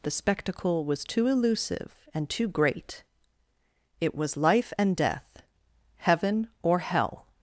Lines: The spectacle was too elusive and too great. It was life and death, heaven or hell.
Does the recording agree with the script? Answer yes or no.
yes